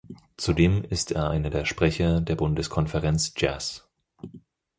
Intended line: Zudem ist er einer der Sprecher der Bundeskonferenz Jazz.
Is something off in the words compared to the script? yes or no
no